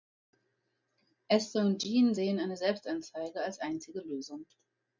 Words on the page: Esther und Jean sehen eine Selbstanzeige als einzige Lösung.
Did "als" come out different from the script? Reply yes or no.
no